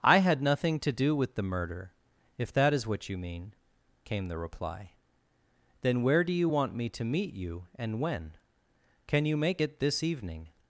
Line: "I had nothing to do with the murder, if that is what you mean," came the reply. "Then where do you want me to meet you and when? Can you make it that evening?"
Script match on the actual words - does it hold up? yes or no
no